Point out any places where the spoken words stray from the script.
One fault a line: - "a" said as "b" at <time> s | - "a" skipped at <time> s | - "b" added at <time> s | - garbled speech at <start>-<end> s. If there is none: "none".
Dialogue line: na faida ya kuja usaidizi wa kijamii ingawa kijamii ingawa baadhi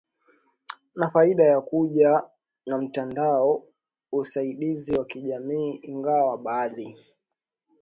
- "na mtandao" added at 2.7 s
- "kijamii ingawa" skipped at 6.4 s